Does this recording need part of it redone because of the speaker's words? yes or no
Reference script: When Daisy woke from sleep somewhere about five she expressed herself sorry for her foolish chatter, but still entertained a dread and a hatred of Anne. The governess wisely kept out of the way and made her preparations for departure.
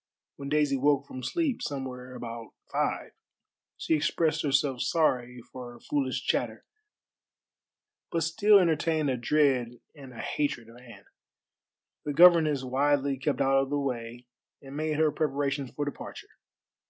no